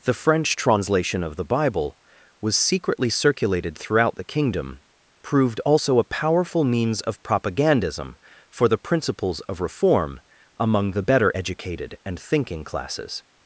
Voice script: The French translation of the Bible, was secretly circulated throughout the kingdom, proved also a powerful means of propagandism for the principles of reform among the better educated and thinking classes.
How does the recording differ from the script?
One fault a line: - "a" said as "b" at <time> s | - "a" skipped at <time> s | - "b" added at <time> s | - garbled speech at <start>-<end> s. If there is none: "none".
none